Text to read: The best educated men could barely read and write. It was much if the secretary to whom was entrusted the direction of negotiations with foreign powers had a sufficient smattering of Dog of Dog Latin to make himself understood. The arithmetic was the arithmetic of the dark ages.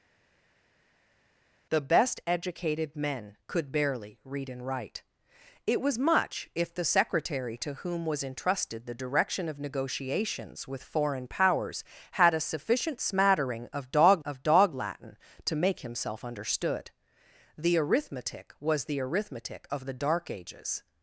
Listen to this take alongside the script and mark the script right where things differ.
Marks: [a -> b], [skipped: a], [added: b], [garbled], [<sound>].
The best educated men could barely read and write. It was much if the secretary to whom was entrusted the direction of negotiations with foreign powers had a sufficient smattering of Dog of Dog Latin to make himself understood. The arithmetic was the arithmetic of the dark ages.